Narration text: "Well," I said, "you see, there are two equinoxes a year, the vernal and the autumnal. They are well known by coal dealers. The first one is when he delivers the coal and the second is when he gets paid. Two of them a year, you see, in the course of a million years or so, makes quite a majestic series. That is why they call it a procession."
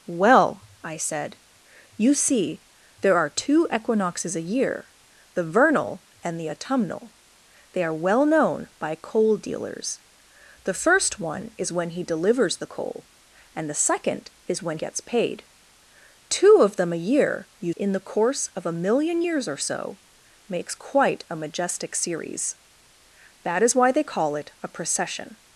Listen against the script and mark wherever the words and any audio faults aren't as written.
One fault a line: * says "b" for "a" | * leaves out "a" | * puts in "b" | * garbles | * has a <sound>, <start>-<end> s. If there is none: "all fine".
* leaves out "he"
* leaves out "see"